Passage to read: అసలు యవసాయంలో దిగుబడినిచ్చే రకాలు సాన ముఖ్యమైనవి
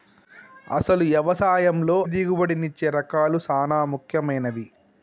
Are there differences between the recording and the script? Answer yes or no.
no